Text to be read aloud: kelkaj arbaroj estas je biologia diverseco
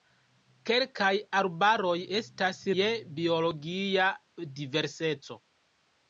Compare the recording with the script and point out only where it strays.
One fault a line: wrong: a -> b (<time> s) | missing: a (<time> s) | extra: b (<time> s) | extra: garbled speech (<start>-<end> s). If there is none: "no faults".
no faults